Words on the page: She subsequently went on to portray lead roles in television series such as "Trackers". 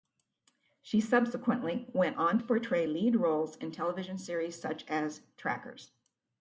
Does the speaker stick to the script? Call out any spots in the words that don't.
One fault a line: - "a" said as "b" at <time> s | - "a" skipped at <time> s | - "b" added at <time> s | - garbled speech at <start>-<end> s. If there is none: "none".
none